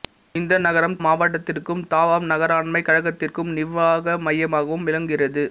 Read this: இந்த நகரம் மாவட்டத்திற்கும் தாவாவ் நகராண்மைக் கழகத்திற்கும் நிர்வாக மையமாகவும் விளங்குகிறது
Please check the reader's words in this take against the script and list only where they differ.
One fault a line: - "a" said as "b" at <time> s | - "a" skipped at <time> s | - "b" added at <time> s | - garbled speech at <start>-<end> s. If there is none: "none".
none